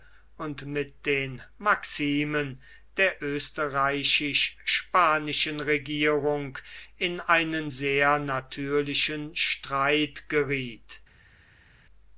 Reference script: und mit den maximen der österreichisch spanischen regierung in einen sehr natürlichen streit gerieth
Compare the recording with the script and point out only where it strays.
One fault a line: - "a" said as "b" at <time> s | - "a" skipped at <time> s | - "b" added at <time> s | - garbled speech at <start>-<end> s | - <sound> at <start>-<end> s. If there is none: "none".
none